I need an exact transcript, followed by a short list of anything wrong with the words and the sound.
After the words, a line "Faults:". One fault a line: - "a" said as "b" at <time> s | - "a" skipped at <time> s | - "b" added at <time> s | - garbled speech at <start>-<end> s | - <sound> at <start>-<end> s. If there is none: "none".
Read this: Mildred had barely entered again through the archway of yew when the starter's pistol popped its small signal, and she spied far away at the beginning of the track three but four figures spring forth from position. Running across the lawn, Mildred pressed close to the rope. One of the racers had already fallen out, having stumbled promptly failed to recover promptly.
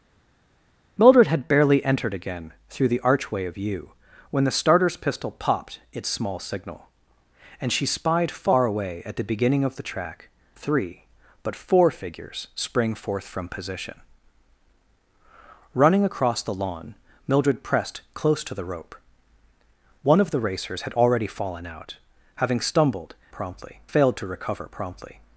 Mildred had barely entered again through the archway of yew when the starter's pistol popped its small signal, and she spied far away at the beginning of the track three but four figures spring forth from position. Running across the lawn, Mildred pressed close to the rope. One of the racers had already fallen out, having stumbled promptly failed to recover promptly.
Faults:
none